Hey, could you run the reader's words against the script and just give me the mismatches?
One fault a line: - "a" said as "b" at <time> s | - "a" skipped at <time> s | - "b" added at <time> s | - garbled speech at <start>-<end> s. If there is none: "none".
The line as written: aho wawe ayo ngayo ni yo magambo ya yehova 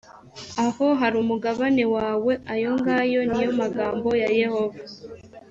- "hari umugabane" added at 1.0 s